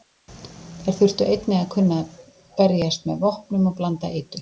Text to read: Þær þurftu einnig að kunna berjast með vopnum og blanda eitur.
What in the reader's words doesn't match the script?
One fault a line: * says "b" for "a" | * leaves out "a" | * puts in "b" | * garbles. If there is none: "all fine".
all fine